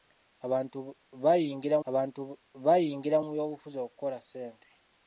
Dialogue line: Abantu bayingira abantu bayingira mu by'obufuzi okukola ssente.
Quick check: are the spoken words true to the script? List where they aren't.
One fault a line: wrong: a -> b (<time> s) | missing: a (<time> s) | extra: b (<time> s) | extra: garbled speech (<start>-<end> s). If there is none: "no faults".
no faults